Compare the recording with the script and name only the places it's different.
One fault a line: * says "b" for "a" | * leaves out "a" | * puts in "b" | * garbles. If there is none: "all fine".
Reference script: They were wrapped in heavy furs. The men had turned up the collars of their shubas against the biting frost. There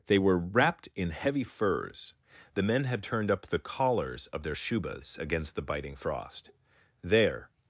all fine